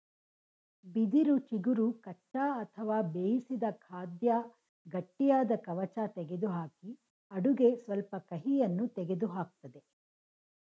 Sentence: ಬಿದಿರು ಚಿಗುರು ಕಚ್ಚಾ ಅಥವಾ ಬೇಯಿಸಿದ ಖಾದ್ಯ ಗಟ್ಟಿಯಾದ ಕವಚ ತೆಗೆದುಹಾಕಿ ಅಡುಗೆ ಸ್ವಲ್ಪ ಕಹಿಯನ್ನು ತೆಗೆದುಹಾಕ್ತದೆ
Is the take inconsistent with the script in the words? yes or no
no